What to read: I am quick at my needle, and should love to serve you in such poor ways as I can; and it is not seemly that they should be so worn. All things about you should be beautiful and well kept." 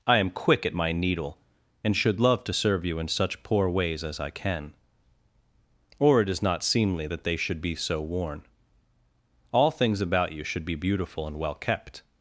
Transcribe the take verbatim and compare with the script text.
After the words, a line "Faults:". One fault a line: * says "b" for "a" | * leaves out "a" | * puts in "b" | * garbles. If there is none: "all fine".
I am quick at my needle, and should love to serve you in such poor ways as I can; or it is not seemly that they should be so worn. All things about you should be beautiful and well kept."
Faults:
* says "or" for "and"